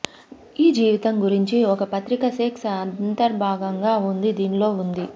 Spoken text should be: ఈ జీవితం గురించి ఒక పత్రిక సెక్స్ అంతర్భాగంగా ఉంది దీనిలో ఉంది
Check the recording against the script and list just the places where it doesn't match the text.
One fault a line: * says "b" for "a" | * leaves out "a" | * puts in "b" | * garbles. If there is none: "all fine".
all fine